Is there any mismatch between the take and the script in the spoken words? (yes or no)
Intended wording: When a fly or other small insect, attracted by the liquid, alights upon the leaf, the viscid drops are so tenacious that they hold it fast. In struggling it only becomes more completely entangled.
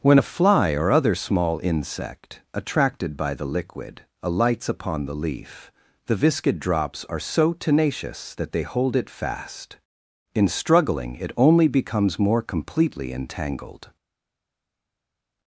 no